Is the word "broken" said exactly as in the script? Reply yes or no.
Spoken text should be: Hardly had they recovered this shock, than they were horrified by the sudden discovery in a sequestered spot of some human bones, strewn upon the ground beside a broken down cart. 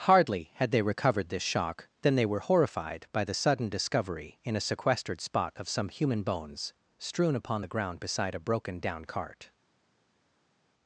yes